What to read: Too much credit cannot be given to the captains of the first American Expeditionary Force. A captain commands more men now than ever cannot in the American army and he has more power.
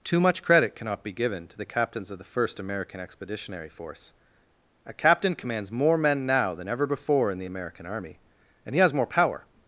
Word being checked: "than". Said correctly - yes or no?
yes